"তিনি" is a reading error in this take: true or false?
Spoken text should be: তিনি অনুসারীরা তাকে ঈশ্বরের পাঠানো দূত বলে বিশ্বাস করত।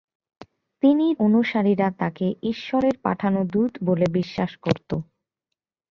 false